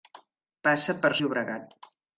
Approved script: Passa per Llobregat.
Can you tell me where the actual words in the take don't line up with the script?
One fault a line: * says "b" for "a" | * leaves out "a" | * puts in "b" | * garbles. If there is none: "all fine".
all fine